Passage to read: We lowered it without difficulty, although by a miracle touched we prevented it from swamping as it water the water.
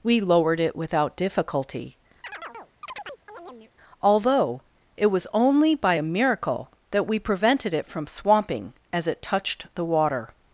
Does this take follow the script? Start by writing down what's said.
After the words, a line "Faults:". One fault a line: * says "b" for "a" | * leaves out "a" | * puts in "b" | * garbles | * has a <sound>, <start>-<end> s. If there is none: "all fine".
We lowered it without difficulty, although it was only by a miracle that we prevented it from swamping as it touched the water.
Faults:
* has a chirp, 2.2-3.7 s
* puts in "it was only"
* says "that" for "touched"
* says "touched" for "water"